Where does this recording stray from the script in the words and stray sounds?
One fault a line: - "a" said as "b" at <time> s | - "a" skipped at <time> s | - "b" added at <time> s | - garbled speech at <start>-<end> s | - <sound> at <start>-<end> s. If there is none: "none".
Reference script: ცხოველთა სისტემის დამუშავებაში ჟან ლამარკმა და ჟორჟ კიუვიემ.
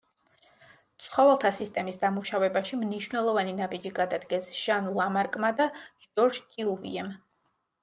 - "მნიშვნელოვანი ნაბიჯი გადადგეს" added at 2.9 s